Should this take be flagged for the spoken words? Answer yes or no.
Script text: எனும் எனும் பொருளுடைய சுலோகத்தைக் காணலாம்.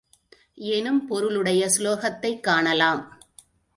yes